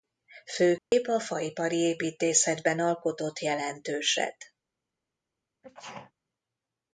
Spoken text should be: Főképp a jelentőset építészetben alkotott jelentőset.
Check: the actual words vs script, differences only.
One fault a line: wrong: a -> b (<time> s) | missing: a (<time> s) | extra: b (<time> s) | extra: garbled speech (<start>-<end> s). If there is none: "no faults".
wrong: jelentőset -> faipari (1.2 s)